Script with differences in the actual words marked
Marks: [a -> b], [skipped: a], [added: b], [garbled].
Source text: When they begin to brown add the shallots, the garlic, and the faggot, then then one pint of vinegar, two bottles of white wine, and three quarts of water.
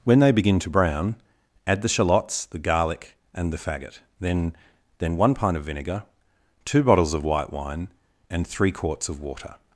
When they begin to brown add the shallots, the garlic, and the faggot, then then one pint of vinegar, two bottles of white wine, and three quarts of water.